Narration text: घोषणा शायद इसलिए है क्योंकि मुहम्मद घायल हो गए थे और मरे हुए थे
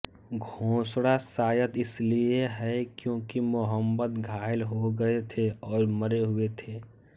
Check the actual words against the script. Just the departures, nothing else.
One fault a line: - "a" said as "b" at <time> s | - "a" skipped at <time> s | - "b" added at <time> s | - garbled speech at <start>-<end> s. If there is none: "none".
none